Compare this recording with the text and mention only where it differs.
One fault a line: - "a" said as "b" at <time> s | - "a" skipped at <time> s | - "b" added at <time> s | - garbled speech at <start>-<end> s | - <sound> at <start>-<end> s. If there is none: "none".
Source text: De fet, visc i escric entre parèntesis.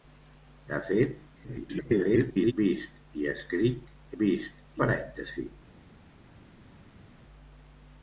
- garbled speech at 1.3-2.5 s
- "entre" said as "visc" at 4.2 s